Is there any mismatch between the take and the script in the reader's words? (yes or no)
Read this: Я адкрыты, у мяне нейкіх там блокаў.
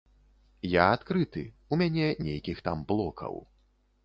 no